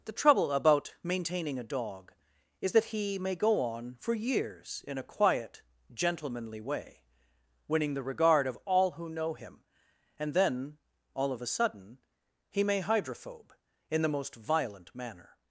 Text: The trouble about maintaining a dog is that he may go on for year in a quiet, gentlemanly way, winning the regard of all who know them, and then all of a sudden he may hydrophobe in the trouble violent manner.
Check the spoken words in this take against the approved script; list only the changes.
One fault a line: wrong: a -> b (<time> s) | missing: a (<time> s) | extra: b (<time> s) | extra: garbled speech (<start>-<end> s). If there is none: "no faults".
wrong: year -> years (4.2 s)
wrong: them -> him (9.3 s)
wrong: trouble -> most (14.1 s)